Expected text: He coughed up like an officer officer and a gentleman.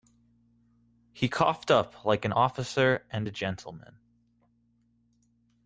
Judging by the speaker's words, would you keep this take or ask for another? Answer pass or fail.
fail